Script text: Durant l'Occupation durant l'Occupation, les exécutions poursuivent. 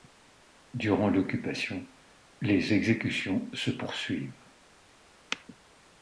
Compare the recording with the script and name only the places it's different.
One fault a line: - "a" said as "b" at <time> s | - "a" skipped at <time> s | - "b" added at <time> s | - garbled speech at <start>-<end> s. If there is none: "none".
- "durant l'Occupation" skipped at 1.9 s
- "se" added at 3.5 s